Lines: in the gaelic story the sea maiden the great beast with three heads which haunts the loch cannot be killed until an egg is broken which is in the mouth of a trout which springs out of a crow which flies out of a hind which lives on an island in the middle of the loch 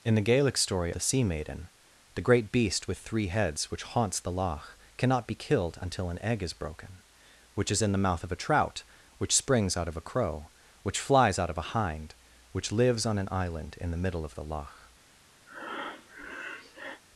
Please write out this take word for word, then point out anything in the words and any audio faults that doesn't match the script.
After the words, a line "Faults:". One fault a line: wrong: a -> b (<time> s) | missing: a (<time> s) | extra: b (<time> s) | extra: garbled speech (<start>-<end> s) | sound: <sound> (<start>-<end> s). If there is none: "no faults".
in the gaelic story the sea maiden the great beast with three heads which haunts the loch cannot be killed until an egg is broken which is in the mouth of a trout which springs out of a crow which flies out of a hind which lives on an island in the middle of the loch
Faults:
sound: breath (15.5-17.0 s)